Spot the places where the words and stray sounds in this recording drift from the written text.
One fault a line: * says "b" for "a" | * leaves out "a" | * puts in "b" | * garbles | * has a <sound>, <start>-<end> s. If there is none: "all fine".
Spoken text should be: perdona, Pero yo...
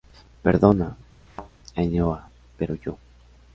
* has a thud, 1.3-1.5 s
* puts in "Ainhoa"